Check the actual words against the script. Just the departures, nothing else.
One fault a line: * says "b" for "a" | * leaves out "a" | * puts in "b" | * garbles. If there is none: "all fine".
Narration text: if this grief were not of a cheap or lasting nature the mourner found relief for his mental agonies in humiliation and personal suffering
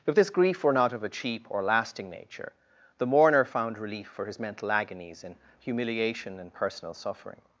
all fine